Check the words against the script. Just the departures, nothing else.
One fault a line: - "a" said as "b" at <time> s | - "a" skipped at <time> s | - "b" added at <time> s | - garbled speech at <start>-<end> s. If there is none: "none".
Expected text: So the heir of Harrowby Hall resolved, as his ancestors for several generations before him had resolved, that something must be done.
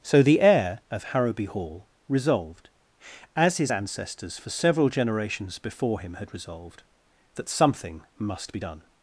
none